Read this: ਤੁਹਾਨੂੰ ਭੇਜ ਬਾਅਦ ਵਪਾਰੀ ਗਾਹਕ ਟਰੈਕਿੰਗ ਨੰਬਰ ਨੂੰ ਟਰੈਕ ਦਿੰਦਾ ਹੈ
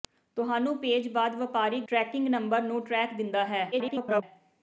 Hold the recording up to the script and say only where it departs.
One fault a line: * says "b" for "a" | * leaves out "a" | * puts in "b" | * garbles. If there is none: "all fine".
* leaves out "ਗਾਹਕ"
* garbles